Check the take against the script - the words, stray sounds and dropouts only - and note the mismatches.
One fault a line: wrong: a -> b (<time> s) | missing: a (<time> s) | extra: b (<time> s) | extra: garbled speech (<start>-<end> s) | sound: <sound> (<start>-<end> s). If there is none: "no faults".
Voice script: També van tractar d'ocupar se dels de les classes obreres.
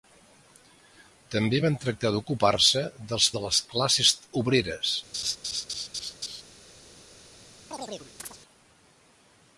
sound: laugh (5.1-6.4 s)
sound: chirp (7.7-8.4 s)